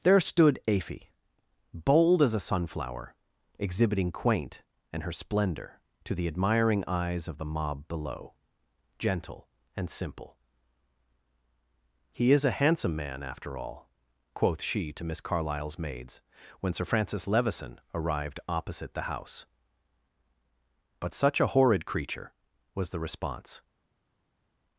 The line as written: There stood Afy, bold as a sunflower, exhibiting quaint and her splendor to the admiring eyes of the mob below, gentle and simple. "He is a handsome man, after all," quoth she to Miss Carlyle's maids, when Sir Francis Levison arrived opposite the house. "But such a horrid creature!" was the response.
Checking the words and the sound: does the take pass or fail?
pass